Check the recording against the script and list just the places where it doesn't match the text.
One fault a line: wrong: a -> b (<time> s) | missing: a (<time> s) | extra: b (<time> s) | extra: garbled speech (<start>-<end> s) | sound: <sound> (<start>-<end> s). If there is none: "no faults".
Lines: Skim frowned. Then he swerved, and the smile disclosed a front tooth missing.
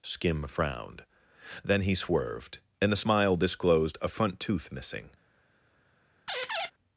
sound: squeak (6.3-6.7 s)